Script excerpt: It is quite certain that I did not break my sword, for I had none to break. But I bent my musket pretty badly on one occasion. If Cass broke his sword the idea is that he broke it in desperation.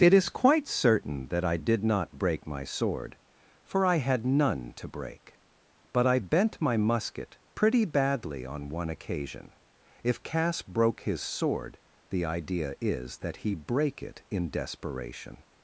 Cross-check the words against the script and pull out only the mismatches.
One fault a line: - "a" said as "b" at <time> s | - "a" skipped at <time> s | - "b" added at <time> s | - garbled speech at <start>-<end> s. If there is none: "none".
- "broke" said as "brake" at 13.5 s